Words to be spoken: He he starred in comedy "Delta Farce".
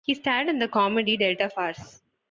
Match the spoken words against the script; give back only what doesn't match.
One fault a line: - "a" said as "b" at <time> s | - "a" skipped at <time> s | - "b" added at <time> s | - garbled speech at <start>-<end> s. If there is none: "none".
- "he" skipped at 0.1 s
- "the" added at 0.6 s